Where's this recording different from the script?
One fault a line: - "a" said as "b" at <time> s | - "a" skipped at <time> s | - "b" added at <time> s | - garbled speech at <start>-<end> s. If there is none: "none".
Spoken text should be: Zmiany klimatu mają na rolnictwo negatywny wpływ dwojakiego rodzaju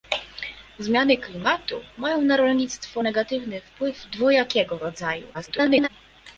- garbled speech at 5.3-5.9 s